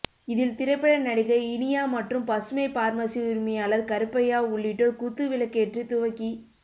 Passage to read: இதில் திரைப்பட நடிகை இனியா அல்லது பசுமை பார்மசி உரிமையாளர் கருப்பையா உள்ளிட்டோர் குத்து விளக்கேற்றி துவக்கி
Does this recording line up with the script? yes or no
no